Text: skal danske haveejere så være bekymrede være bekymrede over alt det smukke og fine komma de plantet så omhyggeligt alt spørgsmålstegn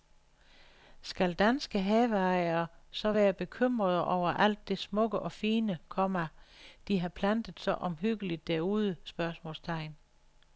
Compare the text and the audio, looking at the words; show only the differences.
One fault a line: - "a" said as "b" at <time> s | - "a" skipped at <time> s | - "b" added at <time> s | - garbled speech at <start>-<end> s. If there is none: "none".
- "være bekymrede" skipped at 4.0 s
- "har" added at 7.0 s
- "alt" said as "derude" at 8.5 s